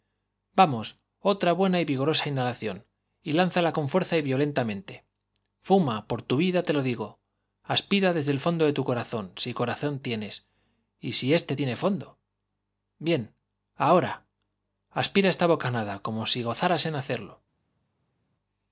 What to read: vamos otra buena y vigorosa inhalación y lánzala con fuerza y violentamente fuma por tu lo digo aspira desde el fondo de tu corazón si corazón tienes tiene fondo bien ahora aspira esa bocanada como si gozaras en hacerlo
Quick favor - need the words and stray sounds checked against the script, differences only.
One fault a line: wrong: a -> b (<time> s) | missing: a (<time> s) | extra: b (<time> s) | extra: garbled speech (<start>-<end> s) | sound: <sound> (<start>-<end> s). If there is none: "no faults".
extra: vida te (6.4 s)
extra: y si éste (11.0 s)
wrong: esa -> esta (15.3 s)